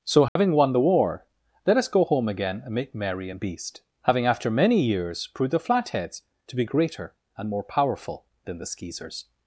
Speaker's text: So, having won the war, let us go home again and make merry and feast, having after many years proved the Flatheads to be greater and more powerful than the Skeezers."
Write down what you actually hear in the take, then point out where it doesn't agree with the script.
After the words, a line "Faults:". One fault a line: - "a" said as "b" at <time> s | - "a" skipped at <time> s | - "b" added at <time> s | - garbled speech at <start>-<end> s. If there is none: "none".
So, having won the war, let us go home again and make merry and beast, having after many years proved the Flatheads to be greater and more powerful than the Skeezers."
Faults:
- "feast" said as "beast" at 3.4 s